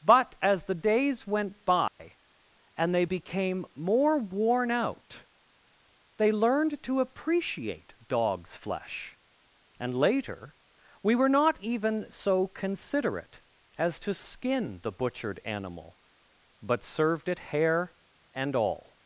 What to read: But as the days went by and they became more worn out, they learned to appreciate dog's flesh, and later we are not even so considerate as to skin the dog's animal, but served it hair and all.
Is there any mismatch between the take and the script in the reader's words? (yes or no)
yes